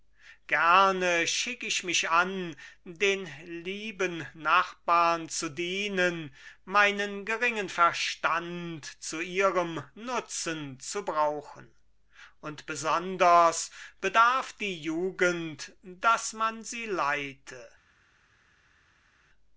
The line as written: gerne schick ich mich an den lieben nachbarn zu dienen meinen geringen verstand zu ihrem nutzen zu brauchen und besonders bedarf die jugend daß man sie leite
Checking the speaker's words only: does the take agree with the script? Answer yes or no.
yes